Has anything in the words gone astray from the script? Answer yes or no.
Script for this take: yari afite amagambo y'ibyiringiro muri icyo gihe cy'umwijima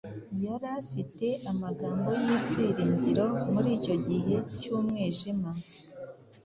no